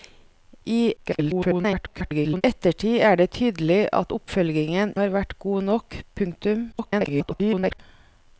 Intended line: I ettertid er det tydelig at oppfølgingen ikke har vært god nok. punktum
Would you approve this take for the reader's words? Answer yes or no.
no